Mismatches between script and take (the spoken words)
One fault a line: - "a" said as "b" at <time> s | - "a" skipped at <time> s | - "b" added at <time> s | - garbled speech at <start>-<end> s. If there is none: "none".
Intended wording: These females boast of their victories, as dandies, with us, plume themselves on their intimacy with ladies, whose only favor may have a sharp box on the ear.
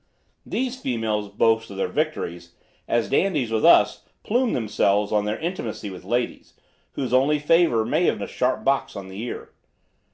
none